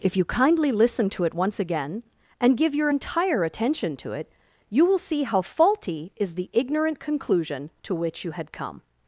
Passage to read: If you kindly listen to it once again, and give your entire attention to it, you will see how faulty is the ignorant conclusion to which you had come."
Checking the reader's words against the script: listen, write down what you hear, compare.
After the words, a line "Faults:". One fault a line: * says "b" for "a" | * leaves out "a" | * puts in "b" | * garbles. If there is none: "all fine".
If you kindly listen to it once again, and give your entire attention to it, you will see how faulty is the ignorant conclusion to which you had come."
Faults:
all fine